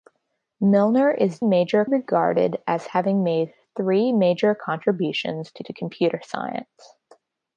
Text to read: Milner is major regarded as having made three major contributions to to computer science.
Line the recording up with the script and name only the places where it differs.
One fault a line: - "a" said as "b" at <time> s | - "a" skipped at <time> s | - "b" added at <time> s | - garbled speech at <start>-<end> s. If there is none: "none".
none